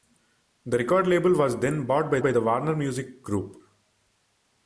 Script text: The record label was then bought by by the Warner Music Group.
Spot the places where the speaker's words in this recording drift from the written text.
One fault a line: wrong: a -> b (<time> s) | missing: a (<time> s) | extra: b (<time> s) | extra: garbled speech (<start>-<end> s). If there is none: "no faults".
no faults